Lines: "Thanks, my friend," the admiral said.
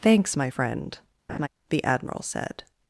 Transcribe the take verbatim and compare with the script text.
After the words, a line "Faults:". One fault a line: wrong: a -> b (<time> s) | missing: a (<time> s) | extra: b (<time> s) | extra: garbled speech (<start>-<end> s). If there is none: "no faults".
"Thanks, my friend," the admiral said.
Faults:
no faults